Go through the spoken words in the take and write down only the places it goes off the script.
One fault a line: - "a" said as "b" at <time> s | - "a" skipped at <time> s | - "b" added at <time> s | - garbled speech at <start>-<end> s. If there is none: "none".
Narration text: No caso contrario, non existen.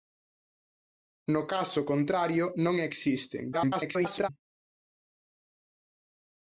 - garbled speech at 3.5-4.3 s